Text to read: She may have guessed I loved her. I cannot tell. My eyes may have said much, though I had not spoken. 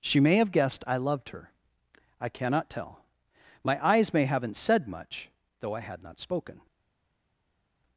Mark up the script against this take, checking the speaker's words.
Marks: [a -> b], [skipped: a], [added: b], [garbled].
She may have guessed I loved her. I cannot tell. My eyes may [have -> haven't] said much, though I had not spoken.